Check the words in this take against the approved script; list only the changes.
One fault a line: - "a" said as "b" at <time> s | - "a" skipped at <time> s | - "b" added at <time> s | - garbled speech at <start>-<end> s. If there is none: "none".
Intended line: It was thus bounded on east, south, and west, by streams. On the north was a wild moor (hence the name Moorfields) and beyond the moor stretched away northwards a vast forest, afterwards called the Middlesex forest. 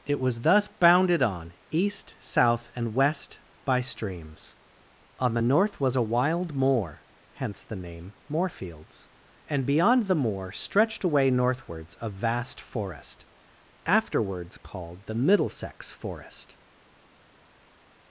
none